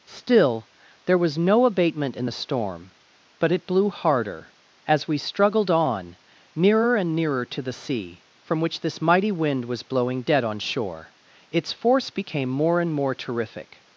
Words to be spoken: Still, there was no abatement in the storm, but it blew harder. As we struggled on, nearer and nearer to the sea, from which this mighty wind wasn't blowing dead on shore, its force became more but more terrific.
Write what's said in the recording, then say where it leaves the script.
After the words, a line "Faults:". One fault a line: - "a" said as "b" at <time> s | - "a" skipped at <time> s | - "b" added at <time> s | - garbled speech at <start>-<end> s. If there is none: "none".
Still, there was no abatement in the storm, but it blew harder. As we struggled on, nearer and nearer to the sea, from which this mighty wind was blowing dead on shore, its force became more and more terrific.
Faults:
- "wasn't" said as "was" at 9.7 s
- "but" said as "and" at 12.8 s